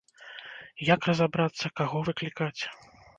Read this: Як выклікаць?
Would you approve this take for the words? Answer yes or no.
no